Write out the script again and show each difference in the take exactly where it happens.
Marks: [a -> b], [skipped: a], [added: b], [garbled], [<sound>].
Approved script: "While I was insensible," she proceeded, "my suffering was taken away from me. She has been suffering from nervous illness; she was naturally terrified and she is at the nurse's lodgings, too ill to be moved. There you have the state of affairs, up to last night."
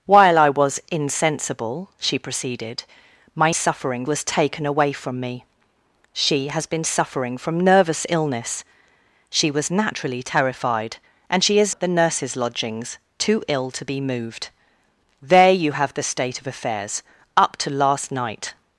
"While I was insensible," she proceeded, "my suffering was taken away from me. She has been suffering from nervous illness; she was naturally terrified and she is at the nurse's lodgings, too ill to be moved. There you have the state of affairs, up to last night."